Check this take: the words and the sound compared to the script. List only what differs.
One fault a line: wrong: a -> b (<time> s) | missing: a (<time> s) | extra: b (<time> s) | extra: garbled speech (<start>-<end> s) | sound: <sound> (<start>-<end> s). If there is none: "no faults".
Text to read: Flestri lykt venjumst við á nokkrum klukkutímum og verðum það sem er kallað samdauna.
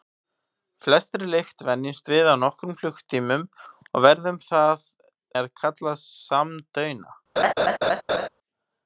missing: sem (4.9 s)
sound: laugh (7.4-8.3 s)